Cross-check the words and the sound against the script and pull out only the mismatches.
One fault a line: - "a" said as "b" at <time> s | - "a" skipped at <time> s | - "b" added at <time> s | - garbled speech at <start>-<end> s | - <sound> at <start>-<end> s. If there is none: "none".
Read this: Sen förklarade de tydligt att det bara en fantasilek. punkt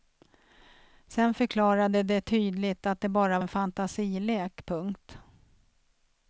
none